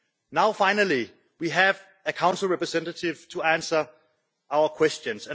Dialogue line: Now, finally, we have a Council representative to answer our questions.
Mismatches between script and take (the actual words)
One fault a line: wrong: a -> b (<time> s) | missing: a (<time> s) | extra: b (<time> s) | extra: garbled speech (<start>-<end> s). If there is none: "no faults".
no faults